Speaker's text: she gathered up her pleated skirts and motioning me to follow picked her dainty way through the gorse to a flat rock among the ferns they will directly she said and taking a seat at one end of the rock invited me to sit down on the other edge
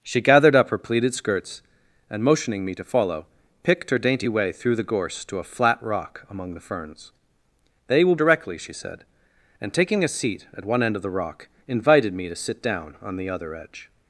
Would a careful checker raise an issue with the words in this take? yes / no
no